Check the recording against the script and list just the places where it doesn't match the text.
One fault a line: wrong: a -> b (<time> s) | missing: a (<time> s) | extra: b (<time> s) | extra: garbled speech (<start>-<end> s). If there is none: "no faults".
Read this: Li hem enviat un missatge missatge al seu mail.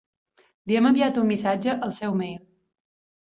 missing: missatge (1.7 s)